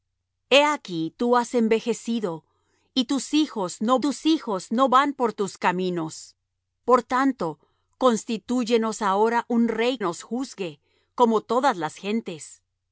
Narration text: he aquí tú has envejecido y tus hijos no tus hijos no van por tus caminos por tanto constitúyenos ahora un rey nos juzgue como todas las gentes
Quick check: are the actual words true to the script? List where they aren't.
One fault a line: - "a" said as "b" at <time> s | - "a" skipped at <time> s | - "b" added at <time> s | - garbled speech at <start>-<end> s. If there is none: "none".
none